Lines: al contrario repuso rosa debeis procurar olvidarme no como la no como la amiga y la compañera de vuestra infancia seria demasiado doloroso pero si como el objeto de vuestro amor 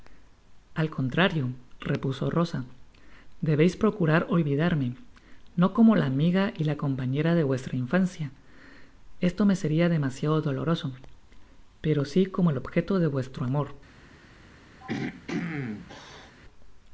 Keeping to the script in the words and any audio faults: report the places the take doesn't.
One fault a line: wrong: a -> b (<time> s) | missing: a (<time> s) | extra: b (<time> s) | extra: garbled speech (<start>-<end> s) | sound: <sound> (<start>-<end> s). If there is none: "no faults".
missing: no como la (6.1 s)
extra: esto me (9.2 s)
sound: throat clearing (14.8-16.4 s)